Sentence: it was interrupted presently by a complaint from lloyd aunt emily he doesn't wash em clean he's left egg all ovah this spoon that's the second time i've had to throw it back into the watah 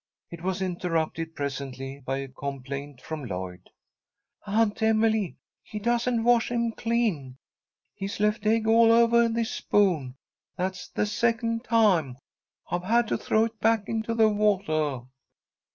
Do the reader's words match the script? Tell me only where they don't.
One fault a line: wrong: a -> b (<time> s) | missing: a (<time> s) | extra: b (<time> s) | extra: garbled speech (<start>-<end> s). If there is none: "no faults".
no faults